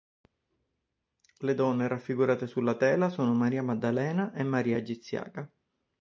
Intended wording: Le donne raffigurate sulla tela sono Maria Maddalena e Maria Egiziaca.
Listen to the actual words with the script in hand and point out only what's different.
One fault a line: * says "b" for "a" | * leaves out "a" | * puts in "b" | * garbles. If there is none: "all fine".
all fine